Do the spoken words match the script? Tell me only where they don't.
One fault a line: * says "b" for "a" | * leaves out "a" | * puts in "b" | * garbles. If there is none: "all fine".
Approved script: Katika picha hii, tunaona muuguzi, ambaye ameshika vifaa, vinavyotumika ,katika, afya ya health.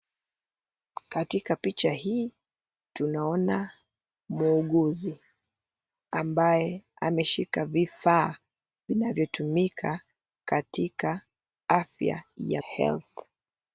all fine